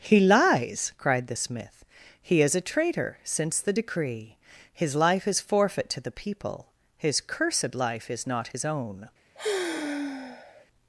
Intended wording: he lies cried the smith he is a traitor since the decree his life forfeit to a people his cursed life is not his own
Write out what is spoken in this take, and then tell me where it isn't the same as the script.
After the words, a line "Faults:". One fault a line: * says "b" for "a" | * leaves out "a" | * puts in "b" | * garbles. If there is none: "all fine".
he lies cried the smith he is a traitor since the decree his life is forfeit to the people his cursed life is not his own
Faults:
* puts in "is"
* says "the" for "a"